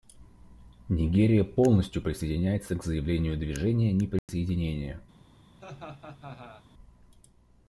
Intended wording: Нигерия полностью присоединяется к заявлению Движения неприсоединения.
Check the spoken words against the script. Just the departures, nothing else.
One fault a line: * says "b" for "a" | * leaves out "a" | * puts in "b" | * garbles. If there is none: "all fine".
all fine